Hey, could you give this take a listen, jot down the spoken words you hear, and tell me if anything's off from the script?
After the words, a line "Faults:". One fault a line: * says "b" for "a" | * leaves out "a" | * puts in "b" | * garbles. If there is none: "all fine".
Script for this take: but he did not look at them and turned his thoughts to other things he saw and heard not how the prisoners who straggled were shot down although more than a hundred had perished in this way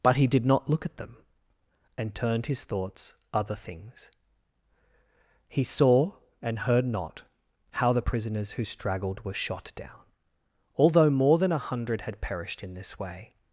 but he did not look at them and turned his thoughts other things he saw and heard not how the prisoners who straggled were shot down although more than a hundred had perished in this way
Faults:
* leaves out "to"